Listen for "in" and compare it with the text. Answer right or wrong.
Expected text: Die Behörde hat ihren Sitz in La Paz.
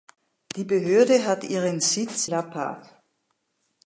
wrong